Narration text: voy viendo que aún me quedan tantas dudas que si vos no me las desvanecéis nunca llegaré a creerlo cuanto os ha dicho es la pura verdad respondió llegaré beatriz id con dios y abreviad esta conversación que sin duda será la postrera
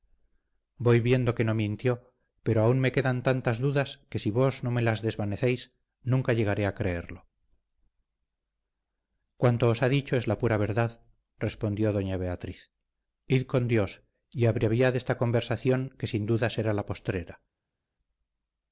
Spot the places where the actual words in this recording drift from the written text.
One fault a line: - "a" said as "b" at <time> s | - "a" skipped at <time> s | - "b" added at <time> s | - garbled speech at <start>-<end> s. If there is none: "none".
- "no mintió pero" added at 1.4 s
- "llegaré" said as "doña" at 11.9 s